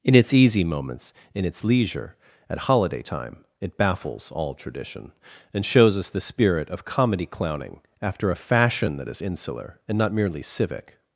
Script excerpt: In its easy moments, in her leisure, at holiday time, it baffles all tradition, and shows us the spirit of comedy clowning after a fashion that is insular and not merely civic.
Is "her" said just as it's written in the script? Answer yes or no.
no